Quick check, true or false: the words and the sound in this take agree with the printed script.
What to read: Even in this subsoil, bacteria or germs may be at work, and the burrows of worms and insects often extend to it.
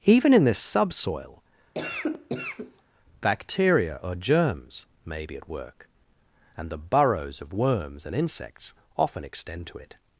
false